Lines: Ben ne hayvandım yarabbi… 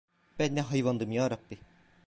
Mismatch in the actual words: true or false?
false